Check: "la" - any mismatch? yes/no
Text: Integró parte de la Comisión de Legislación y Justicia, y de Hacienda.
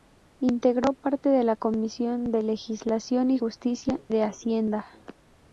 no